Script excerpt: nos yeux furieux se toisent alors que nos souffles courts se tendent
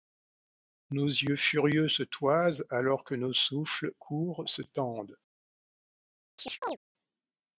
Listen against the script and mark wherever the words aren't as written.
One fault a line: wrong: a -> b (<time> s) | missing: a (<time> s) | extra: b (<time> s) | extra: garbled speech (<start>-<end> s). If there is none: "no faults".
no faults